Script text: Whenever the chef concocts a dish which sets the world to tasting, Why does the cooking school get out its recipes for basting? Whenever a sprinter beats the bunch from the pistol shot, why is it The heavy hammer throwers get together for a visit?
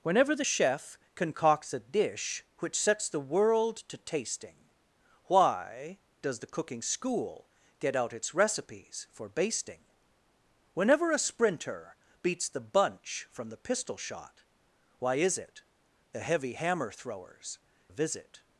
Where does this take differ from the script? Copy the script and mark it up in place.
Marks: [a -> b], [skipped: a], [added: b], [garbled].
Whenever the chef concocts a dish which sets the world to tasting, Why does the cooking school get out its recipes for basting? Whenever a sprinter beats the bunch from the pistol shot, why is it The heavy hammer throwers [skipped: get together for] a visit?